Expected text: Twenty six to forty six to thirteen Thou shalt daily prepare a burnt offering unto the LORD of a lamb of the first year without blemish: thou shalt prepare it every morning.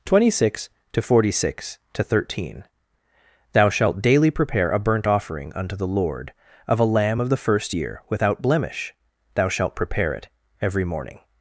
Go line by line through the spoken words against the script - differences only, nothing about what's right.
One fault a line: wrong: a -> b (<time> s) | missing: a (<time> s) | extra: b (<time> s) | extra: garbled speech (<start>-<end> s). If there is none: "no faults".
no faults